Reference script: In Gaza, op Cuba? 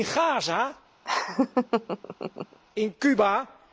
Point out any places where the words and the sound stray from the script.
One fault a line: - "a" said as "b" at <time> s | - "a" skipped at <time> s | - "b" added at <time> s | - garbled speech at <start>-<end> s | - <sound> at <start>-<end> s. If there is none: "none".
- laugh at 1.0-2.6 s
- "op" said as "in" at 2.7 s